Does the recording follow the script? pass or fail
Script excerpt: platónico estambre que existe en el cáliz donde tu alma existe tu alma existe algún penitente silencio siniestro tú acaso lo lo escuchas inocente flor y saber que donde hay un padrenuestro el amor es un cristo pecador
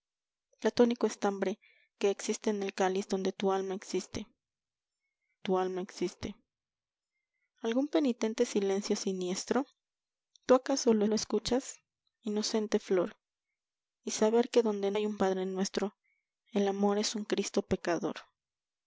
pass